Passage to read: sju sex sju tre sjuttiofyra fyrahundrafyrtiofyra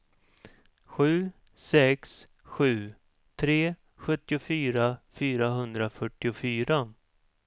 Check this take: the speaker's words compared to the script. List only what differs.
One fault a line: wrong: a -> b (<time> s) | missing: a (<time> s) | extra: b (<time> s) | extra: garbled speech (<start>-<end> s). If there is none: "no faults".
no faults